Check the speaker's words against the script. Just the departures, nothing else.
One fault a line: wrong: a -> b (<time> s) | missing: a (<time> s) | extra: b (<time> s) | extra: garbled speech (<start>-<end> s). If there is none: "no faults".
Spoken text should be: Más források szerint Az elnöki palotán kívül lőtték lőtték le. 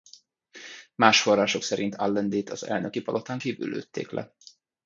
extra: Allendét (1.9 s)
missing: lőtték (4.1 s)